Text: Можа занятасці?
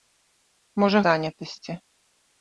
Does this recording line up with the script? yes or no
yes